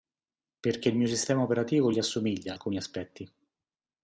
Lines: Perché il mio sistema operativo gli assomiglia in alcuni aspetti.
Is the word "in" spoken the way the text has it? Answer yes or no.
no